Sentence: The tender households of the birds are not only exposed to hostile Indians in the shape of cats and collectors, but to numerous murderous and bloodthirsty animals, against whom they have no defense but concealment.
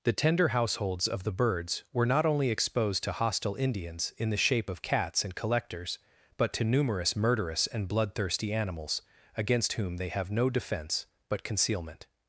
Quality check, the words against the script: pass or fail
fail